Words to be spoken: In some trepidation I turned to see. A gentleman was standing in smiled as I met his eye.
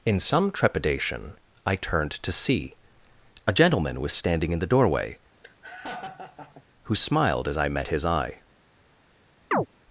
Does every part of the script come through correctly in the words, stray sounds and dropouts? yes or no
no